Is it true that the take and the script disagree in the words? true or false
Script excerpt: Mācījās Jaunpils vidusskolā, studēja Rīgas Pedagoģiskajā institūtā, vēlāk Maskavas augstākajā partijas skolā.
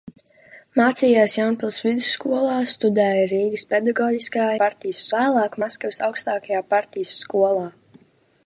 true